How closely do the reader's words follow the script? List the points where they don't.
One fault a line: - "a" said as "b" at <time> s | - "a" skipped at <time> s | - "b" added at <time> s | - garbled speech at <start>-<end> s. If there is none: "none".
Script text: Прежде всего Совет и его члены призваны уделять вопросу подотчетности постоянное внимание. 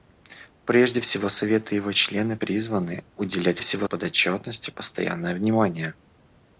- "вопросу" said as "всего" at 3.6 s